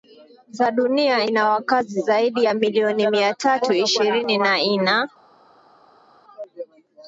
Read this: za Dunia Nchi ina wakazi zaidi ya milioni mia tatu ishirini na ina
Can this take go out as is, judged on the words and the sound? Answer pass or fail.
fail